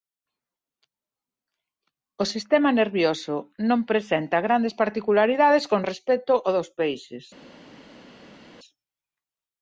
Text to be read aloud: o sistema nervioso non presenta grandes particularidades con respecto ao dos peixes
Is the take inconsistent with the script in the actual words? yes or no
no